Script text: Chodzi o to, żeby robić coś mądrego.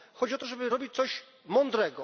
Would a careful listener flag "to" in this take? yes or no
no